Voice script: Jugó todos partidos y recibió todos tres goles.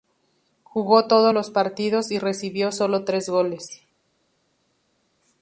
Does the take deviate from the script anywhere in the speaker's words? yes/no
yes